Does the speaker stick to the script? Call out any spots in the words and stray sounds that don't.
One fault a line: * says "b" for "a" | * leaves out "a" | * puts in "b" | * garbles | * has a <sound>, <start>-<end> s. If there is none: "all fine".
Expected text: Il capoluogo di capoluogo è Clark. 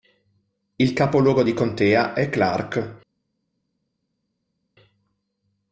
* says "contea" for "capoluogo"